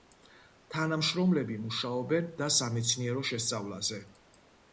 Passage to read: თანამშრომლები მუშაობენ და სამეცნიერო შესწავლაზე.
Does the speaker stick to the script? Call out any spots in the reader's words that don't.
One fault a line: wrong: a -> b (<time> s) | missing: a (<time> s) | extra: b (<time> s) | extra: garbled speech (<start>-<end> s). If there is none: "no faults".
no faults